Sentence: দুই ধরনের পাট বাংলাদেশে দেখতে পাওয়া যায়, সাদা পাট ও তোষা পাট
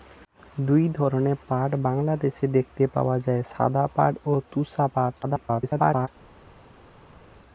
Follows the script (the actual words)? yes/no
no